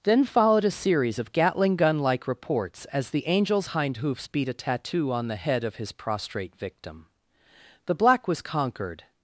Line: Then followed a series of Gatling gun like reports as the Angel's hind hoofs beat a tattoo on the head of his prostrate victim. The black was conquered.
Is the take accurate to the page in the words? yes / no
yes